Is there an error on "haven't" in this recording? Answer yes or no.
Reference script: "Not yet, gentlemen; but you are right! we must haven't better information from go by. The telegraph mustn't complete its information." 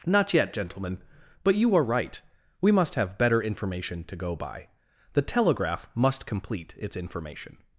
yes